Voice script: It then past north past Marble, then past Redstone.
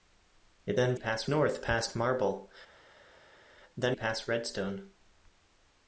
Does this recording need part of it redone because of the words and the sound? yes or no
no